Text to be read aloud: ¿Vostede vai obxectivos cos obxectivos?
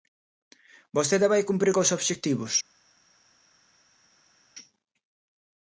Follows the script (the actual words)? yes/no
no